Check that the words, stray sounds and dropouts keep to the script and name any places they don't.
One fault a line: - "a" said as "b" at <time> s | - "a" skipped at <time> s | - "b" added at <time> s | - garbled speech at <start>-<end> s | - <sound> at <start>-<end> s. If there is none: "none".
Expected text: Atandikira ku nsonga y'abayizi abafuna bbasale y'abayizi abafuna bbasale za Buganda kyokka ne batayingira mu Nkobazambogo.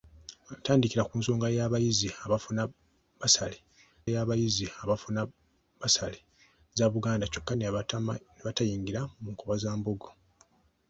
none